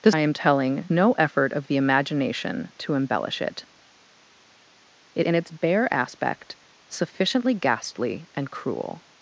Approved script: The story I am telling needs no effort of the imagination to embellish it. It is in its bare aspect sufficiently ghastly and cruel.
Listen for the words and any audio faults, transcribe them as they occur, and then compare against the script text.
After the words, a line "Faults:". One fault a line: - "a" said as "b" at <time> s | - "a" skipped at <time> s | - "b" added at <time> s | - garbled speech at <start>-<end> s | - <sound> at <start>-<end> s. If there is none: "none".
The I am telling no effort of the imagination to embellish it. It in its bare aspect sufficiently ghastly and cruel.
Faults:
- "story" skipped at 0.1 s
- "needs" skipped at 0.9 s
- "is" skipped at 5.2 s